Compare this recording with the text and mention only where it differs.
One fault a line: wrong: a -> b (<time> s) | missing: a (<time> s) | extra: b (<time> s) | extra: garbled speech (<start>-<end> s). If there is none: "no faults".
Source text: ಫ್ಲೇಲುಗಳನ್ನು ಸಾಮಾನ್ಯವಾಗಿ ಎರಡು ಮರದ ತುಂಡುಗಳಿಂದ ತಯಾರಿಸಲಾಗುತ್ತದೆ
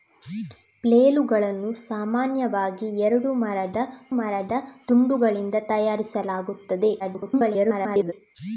extra: ಮರದ (4.2 s)
extra: garbled speech (7.0-8.1 s)